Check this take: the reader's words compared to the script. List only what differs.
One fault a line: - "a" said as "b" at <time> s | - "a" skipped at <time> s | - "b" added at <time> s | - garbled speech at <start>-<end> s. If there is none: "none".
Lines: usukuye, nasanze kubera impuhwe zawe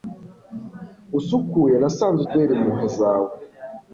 none